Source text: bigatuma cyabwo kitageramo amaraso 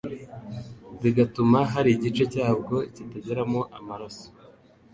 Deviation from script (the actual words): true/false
true